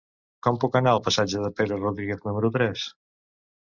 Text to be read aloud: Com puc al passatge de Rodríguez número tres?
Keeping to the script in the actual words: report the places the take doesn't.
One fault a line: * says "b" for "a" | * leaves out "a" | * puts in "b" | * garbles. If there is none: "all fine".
* puts in "anar"
* puts in "Pere"